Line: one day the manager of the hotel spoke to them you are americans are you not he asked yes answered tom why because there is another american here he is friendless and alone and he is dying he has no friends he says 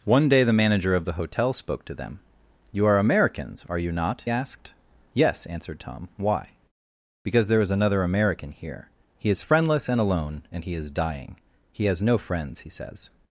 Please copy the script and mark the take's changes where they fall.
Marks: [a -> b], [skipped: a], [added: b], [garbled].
one day the manager of the hotel spoke to them you are americans are you not [skipped: he] asked yes answered tom why because there is another american here he is friendless and alone and he is dying he has no friends he says